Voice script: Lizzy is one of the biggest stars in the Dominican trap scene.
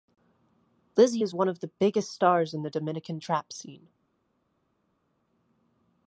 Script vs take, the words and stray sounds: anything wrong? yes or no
no